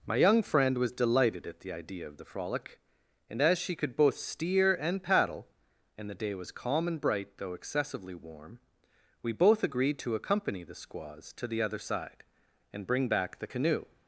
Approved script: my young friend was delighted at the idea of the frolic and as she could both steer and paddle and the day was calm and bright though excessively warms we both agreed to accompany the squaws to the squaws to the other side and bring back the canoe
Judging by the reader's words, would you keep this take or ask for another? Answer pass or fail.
fail